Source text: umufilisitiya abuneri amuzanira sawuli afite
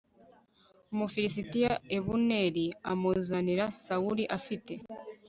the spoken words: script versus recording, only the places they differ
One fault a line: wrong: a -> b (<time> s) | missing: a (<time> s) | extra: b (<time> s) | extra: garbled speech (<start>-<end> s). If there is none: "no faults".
no faults